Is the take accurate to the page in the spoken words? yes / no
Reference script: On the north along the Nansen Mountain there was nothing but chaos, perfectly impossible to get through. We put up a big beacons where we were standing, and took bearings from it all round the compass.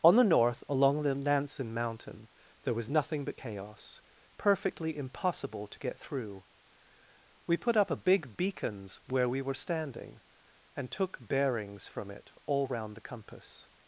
yes